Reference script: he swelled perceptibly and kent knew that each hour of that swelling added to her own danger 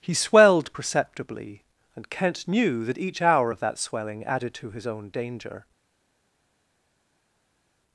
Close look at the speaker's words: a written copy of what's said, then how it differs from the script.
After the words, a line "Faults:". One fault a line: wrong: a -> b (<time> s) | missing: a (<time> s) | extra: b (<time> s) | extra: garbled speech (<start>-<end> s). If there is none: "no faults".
he swelled perceptibly and kent knew that each hour of that swelling added to his own danger
Faults:
wrong: her -> his (4.7 s)